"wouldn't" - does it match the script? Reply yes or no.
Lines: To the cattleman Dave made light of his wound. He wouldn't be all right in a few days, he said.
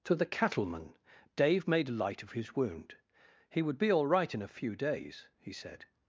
no